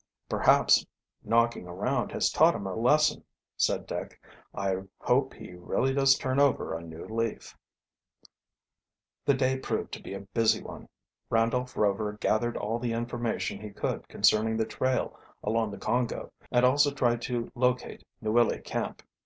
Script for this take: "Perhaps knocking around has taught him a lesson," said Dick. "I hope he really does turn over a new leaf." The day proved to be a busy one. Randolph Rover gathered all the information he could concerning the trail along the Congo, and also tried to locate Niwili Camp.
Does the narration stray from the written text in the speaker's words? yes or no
no